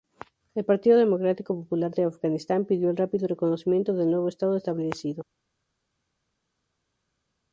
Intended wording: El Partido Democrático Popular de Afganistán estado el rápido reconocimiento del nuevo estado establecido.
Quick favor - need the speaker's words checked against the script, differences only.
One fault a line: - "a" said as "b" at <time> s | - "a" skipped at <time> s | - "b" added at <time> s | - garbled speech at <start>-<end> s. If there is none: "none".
- "estado" said as "pidió" at 2.6 s